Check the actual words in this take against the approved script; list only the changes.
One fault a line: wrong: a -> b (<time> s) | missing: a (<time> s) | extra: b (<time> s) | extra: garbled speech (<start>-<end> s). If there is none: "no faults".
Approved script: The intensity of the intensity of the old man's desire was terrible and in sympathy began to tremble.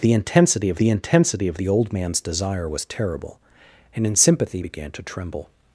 no faults